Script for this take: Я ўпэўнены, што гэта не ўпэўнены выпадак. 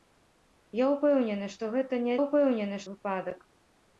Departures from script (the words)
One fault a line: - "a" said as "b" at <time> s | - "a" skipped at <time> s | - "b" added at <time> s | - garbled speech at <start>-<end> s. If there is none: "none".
none